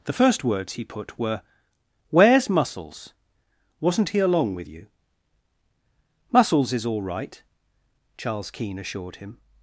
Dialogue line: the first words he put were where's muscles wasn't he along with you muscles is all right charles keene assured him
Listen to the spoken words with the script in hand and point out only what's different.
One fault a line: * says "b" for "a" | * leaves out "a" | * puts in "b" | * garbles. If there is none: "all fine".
all fine